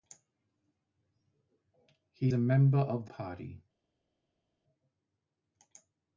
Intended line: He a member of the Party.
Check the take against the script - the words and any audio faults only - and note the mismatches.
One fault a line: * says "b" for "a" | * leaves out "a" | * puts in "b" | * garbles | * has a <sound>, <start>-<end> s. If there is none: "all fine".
all fine